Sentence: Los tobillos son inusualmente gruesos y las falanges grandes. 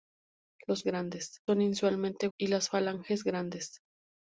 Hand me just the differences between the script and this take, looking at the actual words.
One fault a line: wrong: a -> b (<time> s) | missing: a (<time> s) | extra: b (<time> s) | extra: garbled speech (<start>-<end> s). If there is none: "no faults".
wrong: tobillos -> grandes (0.8 s)
missing: gruesos (2.3 s)